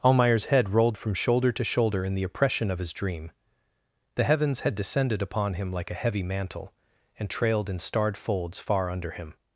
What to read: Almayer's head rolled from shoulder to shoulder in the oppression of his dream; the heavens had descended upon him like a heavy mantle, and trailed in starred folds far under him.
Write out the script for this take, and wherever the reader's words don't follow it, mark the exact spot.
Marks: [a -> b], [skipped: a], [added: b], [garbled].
Almayer's head rolled from shoulder to shoulder in the oppression of his dream; the heavens had descended upon him like a heavy mantle, and trailed in starred folds far under him.